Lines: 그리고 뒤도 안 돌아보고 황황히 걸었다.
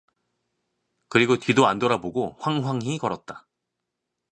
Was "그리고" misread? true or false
false